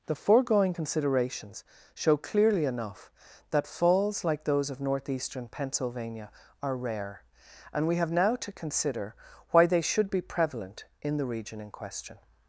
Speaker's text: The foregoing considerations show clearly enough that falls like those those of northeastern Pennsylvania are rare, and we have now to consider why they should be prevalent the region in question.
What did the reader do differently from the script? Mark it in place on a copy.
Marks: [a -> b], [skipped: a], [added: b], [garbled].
The foregoing considerations show clearly enough that falls like those [skipped: those] of northeastern Pennsylvania are rare, and we have now to consider why they should be prevalent [added: in] the region in question.